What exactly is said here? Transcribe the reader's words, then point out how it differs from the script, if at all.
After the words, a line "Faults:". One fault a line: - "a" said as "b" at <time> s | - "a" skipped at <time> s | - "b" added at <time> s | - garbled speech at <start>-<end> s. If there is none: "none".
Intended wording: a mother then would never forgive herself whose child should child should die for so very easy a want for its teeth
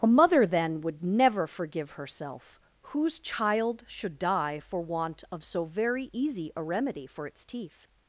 a mother then would never forgive herself whose child should die for want of so very easy a remedy for its teeth
Faults:
- "child should die for" said as "die for want of" at 4.2 s
- "want" said as "remedy" at 6.6 s